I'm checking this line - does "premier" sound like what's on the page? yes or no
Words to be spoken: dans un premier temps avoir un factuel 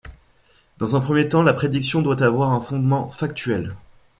yes